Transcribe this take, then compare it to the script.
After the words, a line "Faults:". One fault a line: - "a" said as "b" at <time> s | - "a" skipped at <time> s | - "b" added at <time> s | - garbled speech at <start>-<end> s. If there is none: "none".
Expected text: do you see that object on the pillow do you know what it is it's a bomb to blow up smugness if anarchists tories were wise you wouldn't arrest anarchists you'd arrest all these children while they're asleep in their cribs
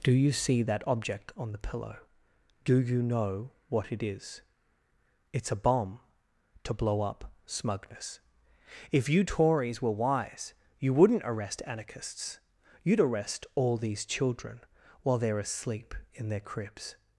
do you see that object on the pillow do you know what it is it's a bomb to blow up smugness if you tories were wise you wouldn't arrest anarchists you'd arrest all these children while they're asleep in their cribs
Faults:
- "anarchists" said as "you" at 9.1 s